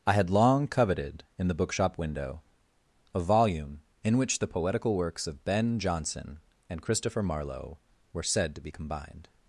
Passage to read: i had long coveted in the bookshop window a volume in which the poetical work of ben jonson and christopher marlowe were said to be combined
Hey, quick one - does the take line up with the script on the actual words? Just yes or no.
no